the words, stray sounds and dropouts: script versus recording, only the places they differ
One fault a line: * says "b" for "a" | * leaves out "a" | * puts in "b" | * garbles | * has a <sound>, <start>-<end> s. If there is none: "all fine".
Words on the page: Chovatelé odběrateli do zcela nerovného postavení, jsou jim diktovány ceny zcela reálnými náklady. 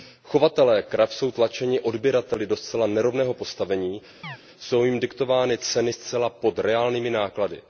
* puts in "krav jsou tlačeni"
* has a chirp, 4.2-4.4 s
* puts in "pod"